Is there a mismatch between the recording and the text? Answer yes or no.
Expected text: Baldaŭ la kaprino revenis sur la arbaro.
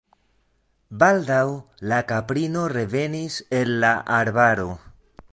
yes